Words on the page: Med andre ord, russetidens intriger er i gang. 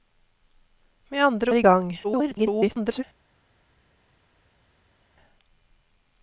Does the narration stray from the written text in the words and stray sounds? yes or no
yes